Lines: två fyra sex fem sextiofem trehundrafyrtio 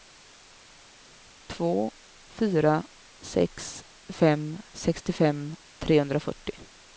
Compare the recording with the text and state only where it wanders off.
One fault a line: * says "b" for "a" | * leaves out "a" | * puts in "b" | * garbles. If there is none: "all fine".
all fine